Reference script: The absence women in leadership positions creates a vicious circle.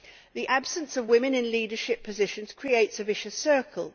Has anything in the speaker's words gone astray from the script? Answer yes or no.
yes